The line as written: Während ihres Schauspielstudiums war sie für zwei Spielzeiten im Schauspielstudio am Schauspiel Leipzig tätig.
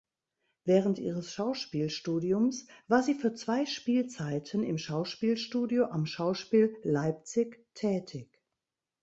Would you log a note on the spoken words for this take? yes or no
no